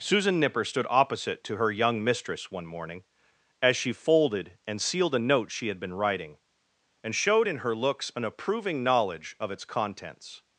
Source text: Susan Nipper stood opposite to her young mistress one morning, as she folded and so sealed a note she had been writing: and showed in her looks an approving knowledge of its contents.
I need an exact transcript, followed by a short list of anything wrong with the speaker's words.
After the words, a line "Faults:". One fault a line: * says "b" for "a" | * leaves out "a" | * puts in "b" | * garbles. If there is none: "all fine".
Susan Nipper stood opposite to her young mistress one morning, as she folded and sealed a note she had been writing: and showed in her looks an approving knowledge of its contents.
Faults:
* leaves out "so"